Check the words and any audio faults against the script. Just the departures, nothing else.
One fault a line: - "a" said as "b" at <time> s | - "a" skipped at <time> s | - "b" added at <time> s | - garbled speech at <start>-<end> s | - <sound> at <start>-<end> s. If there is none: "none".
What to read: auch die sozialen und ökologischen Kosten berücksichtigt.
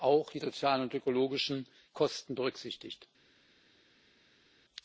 none